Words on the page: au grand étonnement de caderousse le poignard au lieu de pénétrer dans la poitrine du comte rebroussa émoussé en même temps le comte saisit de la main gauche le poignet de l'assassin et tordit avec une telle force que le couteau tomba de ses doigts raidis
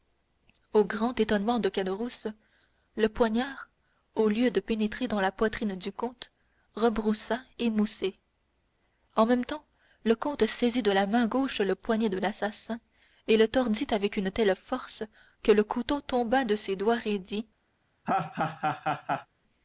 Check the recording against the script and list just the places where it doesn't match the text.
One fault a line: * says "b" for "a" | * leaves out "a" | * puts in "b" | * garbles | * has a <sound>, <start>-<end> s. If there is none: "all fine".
* puts in "le"
* has a laugh, 18.0-19.3 s